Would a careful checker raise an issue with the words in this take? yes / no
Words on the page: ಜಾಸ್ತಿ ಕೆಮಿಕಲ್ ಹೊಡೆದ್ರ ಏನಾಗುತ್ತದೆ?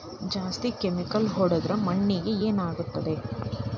yes